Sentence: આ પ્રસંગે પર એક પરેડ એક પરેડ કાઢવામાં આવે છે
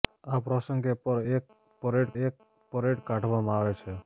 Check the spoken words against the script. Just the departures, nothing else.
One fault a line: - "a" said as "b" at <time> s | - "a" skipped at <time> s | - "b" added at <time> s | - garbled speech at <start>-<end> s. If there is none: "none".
none